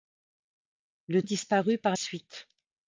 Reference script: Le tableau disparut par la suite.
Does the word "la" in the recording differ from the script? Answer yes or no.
yes